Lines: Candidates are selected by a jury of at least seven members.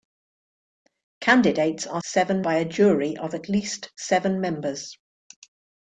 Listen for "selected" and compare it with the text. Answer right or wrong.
wrong